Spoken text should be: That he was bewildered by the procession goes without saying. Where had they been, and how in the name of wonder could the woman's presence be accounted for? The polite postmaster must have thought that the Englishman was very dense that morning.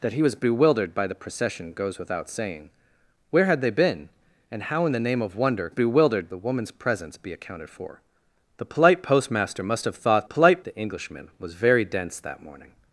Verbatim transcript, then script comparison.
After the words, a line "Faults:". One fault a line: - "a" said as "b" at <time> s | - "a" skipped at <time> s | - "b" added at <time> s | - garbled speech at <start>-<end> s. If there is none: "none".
That he was bewildered by the procession goes without saying. Where had they been, and how in the name of wonder bewildered the woman's presence be accounted for? The polite postmaster must have thought polite the Englishman was very dense that morning.
Faults:
- "could" said as "bewildered" at 5.7 s
- "that" said as "polite" at 10.2 s